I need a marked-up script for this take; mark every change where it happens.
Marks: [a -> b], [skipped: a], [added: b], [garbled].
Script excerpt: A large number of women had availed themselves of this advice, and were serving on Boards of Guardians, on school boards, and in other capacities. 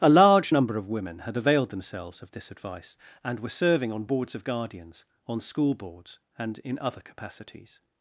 A large number of women had availed themselves of this advice, and were serving on Boards of Guardians, on school boards, and in other capacities.